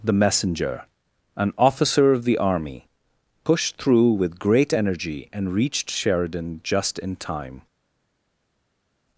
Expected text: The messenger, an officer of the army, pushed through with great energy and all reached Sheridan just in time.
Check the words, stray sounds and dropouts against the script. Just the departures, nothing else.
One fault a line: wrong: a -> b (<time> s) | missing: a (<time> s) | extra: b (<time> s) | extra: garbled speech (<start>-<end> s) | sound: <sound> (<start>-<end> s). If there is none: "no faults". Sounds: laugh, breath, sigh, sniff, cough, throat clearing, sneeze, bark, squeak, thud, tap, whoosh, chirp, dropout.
missing: all (5.5 s)